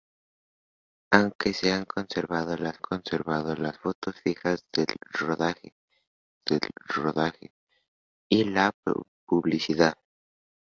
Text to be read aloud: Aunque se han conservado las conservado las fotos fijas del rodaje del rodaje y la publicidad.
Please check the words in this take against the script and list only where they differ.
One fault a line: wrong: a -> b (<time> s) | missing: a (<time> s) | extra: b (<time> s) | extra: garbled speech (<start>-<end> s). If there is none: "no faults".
no faults